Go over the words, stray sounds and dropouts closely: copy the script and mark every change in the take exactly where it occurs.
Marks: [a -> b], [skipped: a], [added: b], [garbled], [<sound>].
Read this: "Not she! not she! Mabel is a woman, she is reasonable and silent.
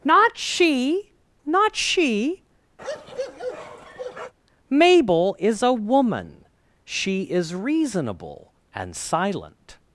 "Not she! not she! [bark] Mabel is a woman, she is reasonable and silent.